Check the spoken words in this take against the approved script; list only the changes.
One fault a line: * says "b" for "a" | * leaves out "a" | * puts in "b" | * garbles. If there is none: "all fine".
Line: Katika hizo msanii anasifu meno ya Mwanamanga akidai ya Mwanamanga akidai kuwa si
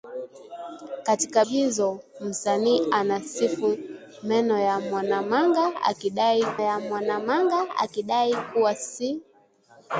all fine